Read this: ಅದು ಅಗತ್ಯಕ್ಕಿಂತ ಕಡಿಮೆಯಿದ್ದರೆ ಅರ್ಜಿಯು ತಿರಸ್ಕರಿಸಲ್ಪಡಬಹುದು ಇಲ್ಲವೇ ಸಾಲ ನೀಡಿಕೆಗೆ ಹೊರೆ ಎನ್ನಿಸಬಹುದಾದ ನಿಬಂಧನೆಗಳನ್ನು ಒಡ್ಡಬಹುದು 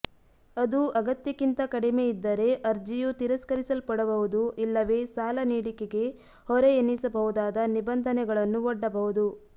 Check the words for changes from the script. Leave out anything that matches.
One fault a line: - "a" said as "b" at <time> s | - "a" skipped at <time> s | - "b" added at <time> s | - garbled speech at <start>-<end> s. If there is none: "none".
none